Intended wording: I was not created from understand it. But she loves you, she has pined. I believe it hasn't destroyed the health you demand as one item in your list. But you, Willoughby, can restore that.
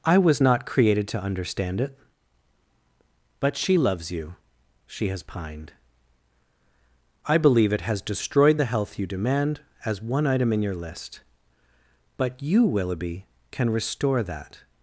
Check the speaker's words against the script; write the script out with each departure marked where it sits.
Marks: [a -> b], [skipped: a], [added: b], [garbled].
I was not created [from -> to] understand it. But she loves you, she has pined. I believe it [hasn't -> has] destroyed the health you demand as one item in your list. But you, Willoughby, can restore that.